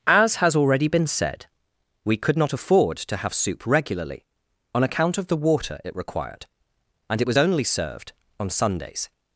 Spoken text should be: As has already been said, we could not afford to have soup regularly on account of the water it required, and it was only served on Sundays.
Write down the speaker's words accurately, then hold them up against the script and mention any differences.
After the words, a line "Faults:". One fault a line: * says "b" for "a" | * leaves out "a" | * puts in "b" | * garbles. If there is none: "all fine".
As has already been said, we could not afford to have soup regularly on account of the water it required, and it was only served on Sundays.
Faults:
all fine